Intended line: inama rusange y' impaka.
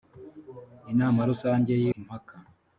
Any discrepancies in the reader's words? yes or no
no